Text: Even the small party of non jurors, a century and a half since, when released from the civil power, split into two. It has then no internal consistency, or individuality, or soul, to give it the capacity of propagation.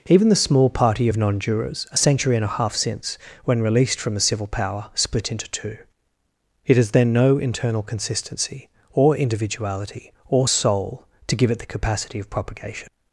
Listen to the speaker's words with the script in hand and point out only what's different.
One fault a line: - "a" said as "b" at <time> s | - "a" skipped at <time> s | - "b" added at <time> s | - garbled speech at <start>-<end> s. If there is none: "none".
none